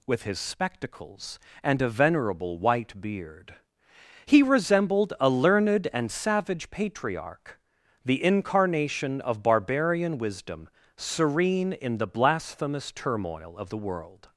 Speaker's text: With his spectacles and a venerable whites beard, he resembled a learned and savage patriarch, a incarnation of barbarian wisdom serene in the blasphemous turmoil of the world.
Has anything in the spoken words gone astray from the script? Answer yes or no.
yes